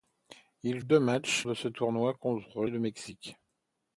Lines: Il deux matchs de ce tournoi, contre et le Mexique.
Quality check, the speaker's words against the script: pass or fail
pass